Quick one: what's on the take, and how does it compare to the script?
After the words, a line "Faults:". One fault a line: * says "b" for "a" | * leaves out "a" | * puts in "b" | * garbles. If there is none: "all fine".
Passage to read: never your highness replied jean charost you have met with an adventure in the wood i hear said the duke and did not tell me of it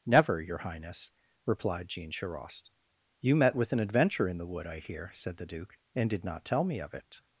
never your highness replied jean charost you met with an adventure in the wood i hear said the duke and did not tell me of it
Faults:
* leaves out "have"